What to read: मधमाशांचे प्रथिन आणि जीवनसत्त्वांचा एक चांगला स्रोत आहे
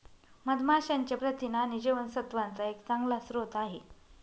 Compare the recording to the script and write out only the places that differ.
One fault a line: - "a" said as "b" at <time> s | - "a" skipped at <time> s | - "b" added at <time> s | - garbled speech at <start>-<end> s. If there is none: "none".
none